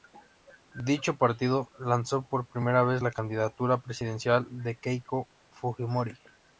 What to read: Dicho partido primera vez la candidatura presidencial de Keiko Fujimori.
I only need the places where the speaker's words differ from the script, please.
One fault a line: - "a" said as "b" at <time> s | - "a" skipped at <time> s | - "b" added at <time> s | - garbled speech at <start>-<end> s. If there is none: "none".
- "lanzó por" added at 1.8 s